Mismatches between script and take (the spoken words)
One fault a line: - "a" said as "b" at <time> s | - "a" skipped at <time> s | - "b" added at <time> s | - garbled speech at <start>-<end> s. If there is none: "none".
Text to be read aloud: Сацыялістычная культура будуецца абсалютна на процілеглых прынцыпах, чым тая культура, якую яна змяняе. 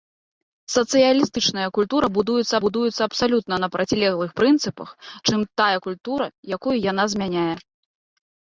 - "будуецца" added at 2.6 s